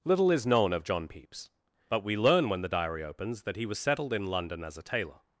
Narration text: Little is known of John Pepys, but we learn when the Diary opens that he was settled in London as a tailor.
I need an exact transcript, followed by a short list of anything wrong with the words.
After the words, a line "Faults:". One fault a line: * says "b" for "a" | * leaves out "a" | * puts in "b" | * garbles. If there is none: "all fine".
Little is known of John Pepys, but we learn when the Diary opens that he was settled in London as a tailor.
Faults:
all fine